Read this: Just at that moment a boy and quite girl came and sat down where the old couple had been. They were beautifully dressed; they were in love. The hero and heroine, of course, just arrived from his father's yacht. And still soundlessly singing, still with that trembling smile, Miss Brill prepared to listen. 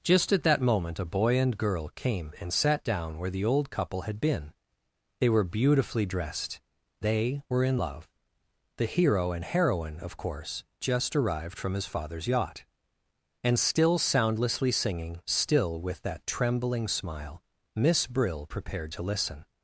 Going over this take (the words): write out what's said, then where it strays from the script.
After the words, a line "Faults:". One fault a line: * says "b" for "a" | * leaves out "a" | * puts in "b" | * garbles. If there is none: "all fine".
Just at that moment a boy and girl came and sat down where the old couple had been. They were beautifully dressed; they were in love. The hero and heroine, of course, just arrived from his father's yacht. And still soundlessly singing, still with that trembling smile, Miss Brill prepared to listen.
Faults:
* leaves out "quite"